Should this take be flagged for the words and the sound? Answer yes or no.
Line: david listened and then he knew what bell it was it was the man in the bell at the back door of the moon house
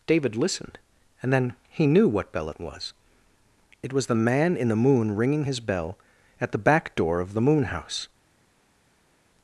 yes